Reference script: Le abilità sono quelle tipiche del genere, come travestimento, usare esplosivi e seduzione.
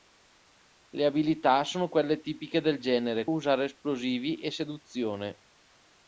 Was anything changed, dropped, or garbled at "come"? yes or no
yes